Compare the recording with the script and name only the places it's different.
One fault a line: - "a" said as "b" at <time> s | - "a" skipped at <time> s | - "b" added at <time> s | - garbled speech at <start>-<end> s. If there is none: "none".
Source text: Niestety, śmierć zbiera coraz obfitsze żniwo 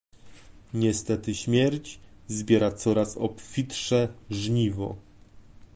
none